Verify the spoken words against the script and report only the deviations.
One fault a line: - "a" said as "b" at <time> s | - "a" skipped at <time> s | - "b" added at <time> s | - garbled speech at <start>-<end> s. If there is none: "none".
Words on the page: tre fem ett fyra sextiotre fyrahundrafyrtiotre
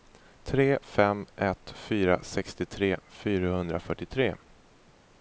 none